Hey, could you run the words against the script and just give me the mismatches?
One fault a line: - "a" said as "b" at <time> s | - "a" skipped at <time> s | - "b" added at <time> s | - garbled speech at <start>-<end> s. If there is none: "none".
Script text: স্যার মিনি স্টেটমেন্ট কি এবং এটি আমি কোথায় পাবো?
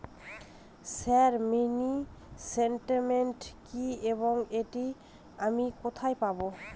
none